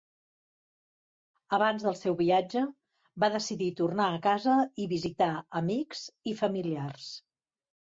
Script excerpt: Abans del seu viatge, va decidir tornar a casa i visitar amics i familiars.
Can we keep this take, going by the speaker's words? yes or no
yes